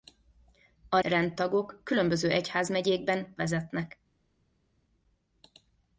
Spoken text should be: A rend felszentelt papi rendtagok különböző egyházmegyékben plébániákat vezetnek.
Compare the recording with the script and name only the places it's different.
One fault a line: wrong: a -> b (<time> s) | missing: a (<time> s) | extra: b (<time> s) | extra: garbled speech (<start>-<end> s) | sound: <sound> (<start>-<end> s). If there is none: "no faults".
missing: rend felszentelt papi (1.0 s)
missing: plébániákat (3.4 s)